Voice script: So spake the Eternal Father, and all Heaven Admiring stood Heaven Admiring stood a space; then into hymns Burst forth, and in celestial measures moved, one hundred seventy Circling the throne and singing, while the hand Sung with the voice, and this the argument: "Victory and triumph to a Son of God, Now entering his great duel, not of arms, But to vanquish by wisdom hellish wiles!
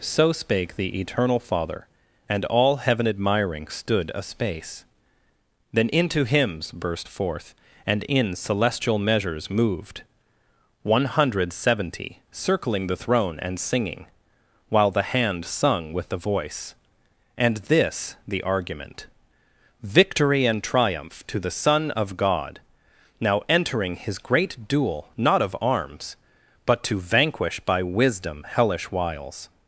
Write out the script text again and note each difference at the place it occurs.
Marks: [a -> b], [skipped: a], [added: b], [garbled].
So spake the Eternal Father, and all Heaven Admiring stood [skipped: Heaven Admiring stood] a space; then into hymns Burst forth, and in celestial measures moved, one hundred seventy Circling the throne and singing, while the hand Sung with the voice, and this the argument: "Victory and triumph to [a -> the] Son of God, Now entering his great duel, not of arms, But to vanquish by wisdom hellish wiles!